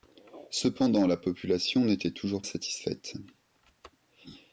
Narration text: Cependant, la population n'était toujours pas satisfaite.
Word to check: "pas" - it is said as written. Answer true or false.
false